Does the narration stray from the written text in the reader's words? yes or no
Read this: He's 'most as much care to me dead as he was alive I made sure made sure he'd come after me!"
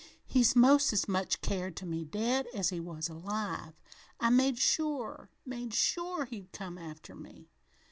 no